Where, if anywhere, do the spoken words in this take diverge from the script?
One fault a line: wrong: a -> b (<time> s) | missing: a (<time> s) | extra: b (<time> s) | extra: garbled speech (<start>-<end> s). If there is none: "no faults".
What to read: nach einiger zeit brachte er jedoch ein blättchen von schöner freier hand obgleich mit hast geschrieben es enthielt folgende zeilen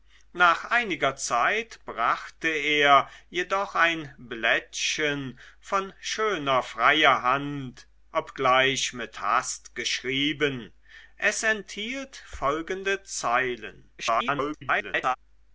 extra: garbled speech (14.0-15.2 s)